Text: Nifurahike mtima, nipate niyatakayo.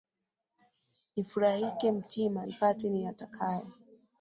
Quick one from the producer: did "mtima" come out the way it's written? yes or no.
yes